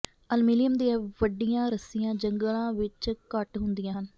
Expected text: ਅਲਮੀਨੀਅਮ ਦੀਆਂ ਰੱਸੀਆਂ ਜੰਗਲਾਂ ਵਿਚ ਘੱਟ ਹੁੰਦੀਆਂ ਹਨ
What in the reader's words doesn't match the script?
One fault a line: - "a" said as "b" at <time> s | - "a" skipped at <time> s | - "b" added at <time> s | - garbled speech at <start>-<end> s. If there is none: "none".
- "ਵੱਡੀਆਂ" added at 1.2 s